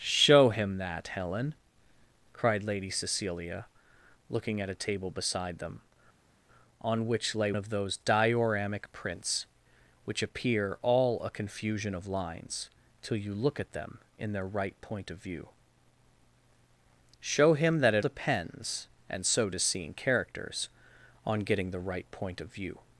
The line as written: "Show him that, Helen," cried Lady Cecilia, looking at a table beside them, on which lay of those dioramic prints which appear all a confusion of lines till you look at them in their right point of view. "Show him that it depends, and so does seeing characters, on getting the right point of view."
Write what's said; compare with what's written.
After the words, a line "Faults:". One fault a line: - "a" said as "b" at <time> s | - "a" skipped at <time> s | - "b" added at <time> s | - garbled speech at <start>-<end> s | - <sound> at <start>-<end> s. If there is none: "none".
"Show him that, Helen," cried Lady Cecilia, looking at a table beside them, on which lay of those dioramic prints which appear all a confusion of lines till you look at them in their right point of view. "Show him that it depends, and so does seeing characters, on getting the right point of view."
Faults:
none